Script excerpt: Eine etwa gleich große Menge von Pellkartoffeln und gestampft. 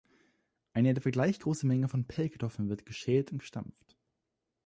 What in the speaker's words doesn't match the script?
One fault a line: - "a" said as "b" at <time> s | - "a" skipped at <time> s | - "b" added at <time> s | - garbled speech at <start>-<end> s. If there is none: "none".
- "wird geschält" added at 2.7 s